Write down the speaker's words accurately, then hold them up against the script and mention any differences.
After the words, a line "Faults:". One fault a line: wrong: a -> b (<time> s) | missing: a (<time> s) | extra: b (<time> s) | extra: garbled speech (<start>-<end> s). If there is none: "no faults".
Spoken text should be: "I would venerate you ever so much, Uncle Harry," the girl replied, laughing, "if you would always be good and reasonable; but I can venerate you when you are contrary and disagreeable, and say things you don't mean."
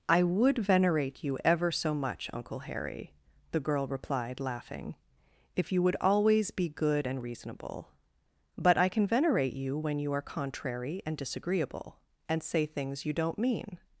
"I would venerate you ever so much, Uncle Harry," the girl replied, laughing, "if you would always be good and reasonable; but I can venerate you when you are contrary and disagreeable, and say things you don't mean."
Faults:
no faults